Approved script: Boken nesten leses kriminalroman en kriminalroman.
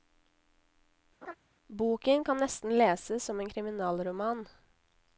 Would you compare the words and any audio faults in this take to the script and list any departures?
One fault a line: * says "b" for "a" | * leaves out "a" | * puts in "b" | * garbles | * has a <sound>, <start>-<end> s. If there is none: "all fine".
* has a laugh, 1.2-1.4 s
* puts in "kan"
* says "som" for "kriminalroman"